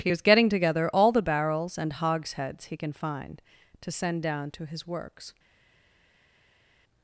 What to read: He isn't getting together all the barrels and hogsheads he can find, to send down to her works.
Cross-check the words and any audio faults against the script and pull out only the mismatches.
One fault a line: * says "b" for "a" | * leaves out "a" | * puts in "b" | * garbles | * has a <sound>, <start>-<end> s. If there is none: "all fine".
* says "is" for "isn't"
* says "his" for "her"